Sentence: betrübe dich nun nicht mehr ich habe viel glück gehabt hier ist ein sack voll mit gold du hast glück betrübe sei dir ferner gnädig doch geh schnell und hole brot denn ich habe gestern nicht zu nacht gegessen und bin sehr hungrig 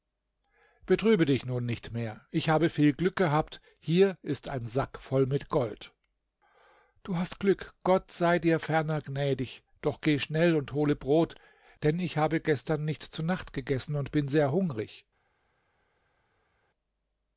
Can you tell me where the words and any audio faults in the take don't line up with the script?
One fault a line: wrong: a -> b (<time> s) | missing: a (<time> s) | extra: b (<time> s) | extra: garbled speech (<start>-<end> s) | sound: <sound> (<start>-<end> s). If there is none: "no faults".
wrong: betrübe -> gott (7.8 s)